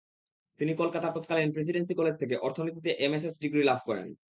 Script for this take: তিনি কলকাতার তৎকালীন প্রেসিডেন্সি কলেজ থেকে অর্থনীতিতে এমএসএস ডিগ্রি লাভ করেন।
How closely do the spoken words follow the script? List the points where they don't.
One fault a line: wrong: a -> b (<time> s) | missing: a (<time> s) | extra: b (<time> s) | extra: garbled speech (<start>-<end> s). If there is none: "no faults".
no faults